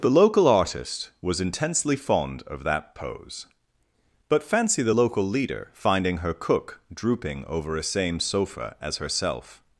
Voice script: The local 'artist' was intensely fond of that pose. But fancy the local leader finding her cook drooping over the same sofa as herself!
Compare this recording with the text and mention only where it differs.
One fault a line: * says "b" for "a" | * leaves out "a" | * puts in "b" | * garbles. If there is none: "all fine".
* says "a" for "the"